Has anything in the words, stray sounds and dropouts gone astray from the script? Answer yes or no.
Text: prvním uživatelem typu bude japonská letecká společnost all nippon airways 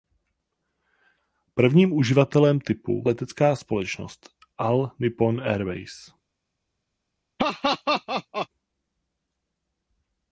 yes